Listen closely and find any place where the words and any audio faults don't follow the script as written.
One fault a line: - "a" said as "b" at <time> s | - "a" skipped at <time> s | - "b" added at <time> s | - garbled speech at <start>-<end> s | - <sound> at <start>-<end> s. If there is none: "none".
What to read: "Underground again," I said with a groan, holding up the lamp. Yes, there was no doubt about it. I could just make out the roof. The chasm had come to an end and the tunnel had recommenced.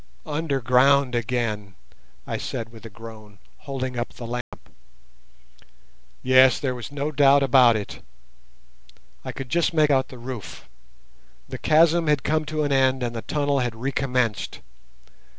- dropout at 4.4-4.5 s